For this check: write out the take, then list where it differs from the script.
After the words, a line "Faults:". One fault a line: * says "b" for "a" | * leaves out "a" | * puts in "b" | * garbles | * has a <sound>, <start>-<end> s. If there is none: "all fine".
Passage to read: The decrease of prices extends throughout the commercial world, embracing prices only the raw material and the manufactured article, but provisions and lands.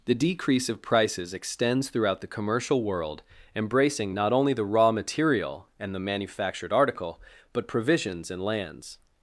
The decrease of prices extends throughout the commercial world, embracing not only the raw material and the manufactured article, but provisions and lands.
Faults:
* says "not" for "prices"